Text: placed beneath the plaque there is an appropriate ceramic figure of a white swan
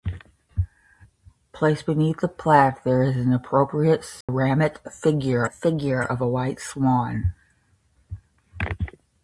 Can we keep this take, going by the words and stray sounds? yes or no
no